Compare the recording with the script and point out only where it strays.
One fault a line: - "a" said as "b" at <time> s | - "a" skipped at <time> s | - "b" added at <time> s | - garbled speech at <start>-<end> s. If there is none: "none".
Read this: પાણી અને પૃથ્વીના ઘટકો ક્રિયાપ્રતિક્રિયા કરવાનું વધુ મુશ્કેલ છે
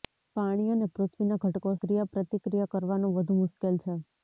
none